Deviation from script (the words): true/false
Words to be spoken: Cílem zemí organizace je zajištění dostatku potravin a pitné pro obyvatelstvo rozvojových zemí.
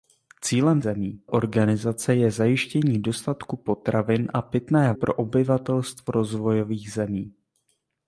false